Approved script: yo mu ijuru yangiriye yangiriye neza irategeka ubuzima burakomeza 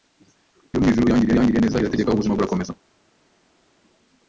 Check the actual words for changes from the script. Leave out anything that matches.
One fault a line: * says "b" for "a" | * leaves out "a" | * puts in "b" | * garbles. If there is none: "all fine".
all fine